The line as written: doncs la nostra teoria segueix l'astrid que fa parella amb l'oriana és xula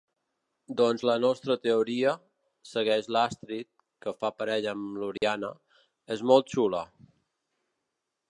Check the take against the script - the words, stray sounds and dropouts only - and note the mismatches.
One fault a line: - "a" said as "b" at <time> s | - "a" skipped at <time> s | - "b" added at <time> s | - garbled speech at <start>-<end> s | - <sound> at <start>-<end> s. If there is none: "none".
- dropout at 5.2-5.2 s
- "molt" added at 6.3 s